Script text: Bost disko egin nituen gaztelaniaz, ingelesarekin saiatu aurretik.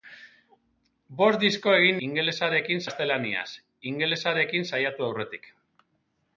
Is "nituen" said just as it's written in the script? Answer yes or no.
no